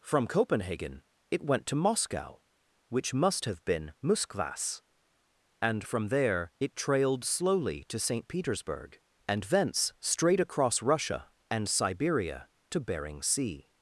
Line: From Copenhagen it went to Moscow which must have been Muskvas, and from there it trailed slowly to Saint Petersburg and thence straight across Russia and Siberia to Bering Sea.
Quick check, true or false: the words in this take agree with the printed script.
true